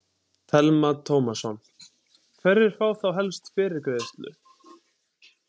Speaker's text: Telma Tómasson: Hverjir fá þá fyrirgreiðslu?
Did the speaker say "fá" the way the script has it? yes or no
yes